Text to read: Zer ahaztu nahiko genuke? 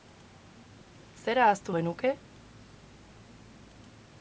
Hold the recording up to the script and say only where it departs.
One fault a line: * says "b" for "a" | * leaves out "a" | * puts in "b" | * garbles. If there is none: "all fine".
* leaves out "nahiko"